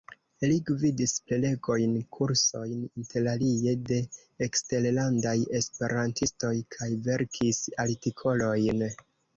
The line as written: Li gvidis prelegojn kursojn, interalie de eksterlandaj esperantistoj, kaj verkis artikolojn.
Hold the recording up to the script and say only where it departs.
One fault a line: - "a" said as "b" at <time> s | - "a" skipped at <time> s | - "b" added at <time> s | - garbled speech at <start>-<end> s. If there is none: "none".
none